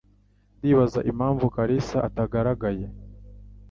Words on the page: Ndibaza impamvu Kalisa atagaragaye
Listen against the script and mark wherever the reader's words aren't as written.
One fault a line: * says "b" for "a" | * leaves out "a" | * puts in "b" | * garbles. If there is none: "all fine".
all fine